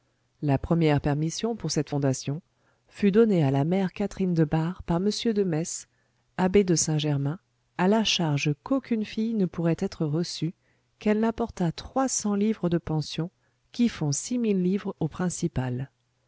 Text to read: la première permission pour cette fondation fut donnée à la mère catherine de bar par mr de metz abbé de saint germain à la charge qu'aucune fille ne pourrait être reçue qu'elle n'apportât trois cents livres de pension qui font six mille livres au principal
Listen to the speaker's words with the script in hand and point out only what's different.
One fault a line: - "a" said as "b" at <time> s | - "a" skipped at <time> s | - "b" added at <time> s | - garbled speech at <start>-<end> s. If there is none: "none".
none